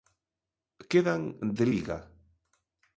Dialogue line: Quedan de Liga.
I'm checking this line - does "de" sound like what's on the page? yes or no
yes